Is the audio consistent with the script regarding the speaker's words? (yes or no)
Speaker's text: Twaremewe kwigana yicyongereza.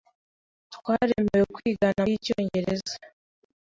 yes